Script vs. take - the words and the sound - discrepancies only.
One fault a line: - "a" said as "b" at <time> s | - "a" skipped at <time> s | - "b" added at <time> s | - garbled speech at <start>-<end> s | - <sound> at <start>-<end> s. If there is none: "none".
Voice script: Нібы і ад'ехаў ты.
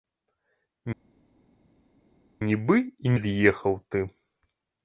none